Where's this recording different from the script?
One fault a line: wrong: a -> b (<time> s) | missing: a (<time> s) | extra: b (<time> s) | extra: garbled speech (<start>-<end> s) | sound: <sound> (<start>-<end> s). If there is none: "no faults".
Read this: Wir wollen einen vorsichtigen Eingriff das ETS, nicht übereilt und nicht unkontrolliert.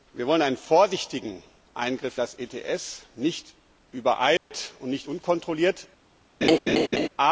sound: dropout (4.4-4.5 s)
sound: laugh (6.4-7.1 s)